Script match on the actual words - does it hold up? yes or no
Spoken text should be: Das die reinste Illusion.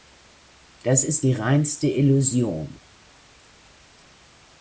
no